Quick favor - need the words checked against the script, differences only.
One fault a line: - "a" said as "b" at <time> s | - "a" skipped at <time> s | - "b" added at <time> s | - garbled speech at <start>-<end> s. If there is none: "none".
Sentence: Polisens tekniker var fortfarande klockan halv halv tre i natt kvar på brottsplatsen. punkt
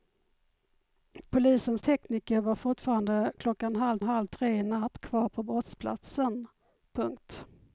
none